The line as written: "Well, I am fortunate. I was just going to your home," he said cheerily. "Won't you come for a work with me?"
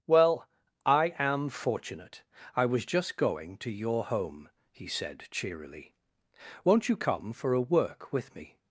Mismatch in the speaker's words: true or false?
false